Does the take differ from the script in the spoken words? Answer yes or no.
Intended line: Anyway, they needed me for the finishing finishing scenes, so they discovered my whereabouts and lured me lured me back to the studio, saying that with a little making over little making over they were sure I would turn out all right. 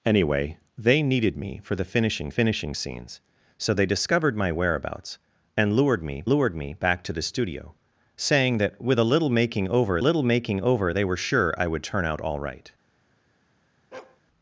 no